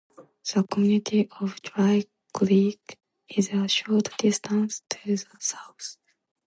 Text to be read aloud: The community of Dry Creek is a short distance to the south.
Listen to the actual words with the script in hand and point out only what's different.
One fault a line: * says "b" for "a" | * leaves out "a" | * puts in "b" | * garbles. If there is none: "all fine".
all fine